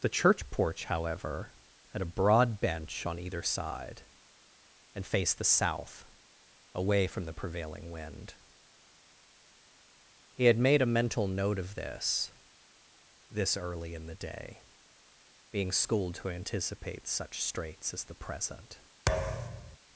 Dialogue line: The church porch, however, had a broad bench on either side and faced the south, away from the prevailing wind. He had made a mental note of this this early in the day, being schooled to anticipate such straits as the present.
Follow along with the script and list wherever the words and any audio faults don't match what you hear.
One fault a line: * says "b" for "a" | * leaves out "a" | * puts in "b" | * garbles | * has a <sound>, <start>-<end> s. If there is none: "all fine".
* has a thud, 19.1-19.8 s